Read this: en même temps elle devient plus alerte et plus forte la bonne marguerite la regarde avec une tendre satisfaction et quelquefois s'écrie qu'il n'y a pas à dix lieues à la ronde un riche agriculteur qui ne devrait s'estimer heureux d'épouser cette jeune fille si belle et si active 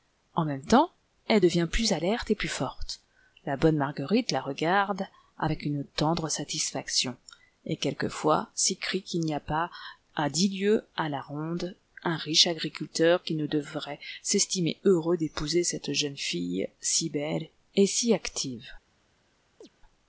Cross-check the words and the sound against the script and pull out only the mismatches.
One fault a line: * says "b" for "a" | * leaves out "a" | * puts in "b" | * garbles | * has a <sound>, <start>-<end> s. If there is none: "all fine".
* has a chirp, 19.6-19.7 s